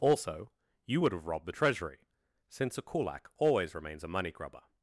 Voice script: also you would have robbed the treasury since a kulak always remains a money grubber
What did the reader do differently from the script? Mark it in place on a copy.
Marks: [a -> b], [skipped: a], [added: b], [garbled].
also you would have robbed the treasury since a kulak always remains a money grubber